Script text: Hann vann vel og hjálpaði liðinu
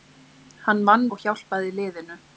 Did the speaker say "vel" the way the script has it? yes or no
no